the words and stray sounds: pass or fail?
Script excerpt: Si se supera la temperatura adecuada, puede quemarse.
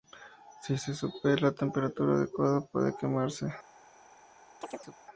fail